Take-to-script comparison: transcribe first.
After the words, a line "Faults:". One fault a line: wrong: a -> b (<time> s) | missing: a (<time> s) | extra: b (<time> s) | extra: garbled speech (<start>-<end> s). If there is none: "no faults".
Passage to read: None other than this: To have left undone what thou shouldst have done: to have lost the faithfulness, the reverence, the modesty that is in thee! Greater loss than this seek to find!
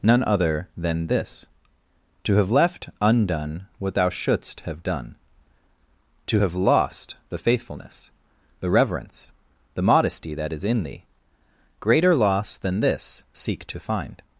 None other than this: To have left undone what thou shouldst have done: to have lost the faithfulness, the reverence, the modesty that is in thee! Greater loss than this seek to find!
Faults:
no faults